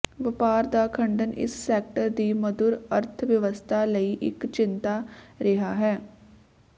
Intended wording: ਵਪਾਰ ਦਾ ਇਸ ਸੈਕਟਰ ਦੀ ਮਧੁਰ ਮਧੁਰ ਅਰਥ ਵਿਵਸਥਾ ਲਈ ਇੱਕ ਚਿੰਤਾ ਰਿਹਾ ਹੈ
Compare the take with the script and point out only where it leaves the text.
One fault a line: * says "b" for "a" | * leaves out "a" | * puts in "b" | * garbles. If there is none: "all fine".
* puts in "ਖੰਡਨ"
* leaves out "ਮਧੁਰ"